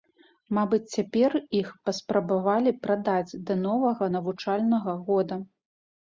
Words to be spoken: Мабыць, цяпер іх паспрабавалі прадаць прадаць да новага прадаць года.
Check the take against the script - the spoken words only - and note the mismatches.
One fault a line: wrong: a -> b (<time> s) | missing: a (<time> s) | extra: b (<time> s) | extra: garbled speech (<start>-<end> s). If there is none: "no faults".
missing: прадаць (3.4 s)
wrong: прадаць -> навучальнага (4.2 s)